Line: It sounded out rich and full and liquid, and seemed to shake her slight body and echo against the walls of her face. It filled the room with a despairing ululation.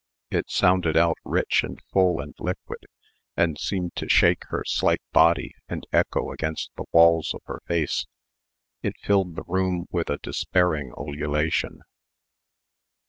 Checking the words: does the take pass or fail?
pass